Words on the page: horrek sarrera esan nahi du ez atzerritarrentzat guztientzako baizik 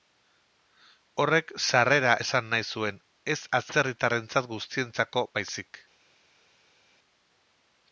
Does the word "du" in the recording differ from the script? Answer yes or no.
yes